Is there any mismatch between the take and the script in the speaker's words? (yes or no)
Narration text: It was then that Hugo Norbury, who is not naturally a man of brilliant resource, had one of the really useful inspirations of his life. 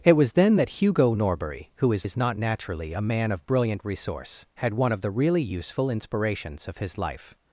yes